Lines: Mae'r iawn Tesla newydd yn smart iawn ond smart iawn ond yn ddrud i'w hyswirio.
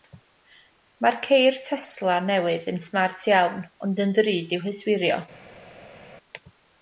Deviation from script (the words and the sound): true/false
true